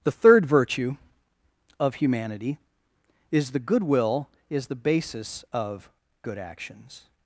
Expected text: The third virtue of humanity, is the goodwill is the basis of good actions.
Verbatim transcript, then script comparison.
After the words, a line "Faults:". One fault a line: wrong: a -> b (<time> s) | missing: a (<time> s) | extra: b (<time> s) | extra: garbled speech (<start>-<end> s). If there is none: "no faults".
The third virtue of humanity, is the goodwill is the basis of good actions.
Faults:
no faults